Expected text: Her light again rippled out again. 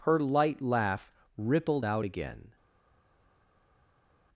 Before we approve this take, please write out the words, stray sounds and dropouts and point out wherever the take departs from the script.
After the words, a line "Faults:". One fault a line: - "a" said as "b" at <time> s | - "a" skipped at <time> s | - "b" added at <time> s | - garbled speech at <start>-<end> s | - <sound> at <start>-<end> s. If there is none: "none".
Her light laugh rippled out again.
Faults:
- "again" said as "laugh" at 0.6 s